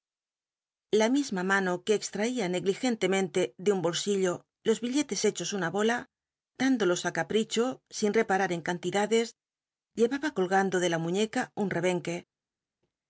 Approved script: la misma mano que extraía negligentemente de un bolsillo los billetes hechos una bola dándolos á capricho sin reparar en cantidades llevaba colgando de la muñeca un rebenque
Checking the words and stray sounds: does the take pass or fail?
pass